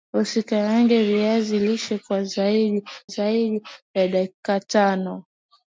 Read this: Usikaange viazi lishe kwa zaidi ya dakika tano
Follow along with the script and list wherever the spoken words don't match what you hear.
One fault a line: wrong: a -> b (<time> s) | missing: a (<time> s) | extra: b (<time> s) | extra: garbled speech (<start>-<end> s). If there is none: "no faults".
extra: zaidi (3.1 s)